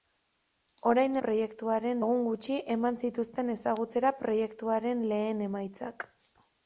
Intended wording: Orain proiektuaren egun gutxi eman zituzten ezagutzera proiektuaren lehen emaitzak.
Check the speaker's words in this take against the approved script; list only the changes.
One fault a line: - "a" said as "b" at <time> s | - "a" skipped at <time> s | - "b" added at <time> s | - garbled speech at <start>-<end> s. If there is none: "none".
none